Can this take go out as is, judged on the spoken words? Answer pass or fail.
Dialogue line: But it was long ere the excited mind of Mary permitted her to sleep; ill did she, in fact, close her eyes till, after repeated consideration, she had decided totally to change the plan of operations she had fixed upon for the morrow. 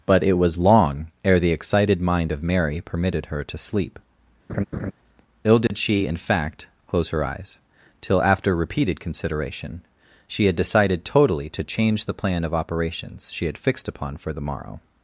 pass